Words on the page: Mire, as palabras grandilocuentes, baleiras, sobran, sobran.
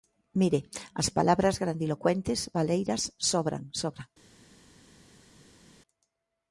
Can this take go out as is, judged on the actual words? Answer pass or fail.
pass